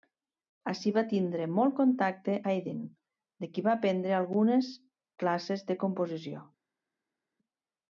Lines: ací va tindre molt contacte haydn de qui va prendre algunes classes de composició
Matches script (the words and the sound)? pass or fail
pass